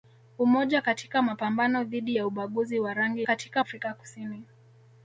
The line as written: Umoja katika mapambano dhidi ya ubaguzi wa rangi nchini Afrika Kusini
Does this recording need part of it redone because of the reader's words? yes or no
yes